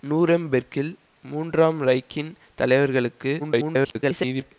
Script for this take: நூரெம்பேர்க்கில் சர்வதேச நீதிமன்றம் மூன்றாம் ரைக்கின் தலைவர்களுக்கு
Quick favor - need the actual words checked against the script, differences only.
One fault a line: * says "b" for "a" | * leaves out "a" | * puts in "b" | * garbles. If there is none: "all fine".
* leaves out "சர்வதேச நீதிமன்றம்"
* garbles